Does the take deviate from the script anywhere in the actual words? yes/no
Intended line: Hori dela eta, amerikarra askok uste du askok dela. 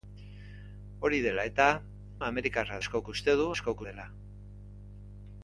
no